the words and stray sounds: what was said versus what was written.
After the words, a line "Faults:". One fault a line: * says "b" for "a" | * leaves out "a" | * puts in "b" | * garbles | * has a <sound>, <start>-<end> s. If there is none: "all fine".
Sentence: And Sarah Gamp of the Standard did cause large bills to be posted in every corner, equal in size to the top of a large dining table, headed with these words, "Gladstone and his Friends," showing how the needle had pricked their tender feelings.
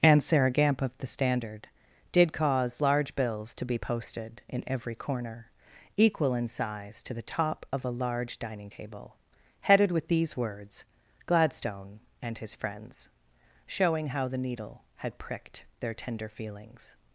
And Sarah Gamp of the Standard did cause large bills to be posted in every corner, equal in size to the top of a large dining table, headed with these words, "Gladstone and his Friends," showing how the needle had pricked their tender feelings.
Faults:
all fine